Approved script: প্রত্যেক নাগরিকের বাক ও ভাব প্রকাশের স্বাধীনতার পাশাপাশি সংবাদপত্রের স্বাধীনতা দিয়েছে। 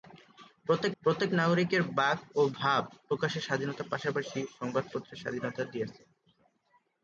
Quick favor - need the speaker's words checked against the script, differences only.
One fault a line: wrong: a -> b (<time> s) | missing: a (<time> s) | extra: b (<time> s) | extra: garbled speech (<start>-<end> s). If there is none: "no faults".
extra: প্রত্যেক (1.0 s)